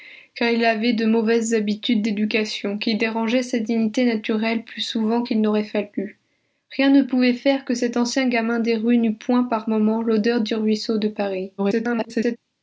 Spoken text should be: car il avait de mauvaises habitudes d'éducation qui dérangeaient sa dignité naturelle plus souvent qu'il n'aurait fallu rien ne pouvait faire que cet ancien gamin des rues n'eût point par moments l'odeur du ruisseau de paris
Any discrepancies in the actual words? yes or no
yes